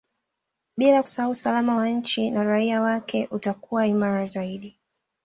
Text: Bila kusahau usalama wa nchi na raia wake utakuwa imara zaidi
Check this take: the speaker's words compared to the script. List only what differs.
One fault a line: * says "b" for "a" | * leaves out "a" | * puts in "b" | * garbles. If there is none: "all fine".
all fine